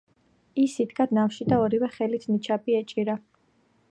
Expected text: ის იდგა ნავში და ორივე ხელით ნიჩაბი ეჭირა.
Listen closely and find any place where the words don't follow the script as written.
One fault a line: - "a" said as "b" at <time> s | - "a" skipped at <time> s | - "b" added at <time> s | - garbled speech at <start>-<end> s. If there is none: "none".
none